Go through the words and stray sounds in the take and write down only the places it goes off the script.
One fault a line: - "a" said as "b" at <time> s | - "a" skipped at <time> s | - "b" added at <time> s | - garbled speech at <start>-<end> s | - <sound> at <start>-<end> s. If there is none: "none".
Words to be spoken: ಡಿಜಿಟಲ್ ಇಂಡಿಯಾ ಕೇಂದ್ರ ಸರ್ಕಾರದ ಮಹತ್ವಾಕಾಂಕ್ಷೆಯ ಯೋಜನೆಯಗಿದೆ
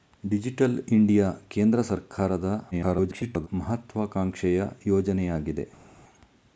- garbled speech at 2.7-3.5 s